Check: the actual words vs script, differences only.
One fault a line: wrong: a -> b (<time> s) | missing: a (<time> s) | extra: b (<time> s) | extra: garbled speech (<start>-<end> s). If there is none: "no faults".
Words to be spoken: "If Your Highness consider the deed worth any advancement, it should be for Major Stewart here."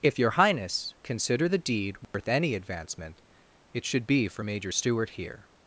no faults